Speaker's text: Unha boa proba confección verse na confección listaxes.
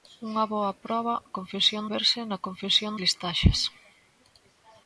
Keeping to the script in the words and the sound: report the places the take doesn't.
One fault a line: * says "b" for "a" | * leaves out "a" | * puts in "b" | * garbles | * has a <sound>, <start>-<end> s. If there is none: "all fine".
all fine